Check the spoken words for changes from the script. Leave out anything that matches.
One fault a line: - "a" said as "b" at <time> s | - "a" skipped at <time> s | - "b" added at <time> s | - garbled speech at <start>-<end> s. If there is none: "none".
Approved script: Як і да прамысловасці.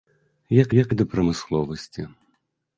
- "як" added at 0.8 s